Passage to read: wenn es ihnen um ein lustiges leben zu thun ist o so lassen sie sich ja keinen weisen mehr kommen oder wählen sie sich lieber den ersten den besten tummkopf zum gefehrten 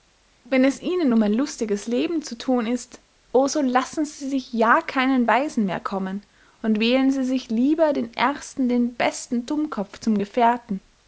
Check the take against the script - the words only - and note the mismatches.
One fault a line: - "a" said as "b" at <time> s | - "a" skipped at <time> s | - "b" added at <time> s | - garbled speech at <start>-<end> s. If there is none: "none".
- "oder" said as "und" at 6.6 s